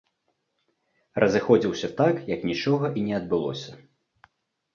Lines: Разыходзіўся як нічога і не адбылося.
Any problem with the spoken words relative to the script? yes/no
yes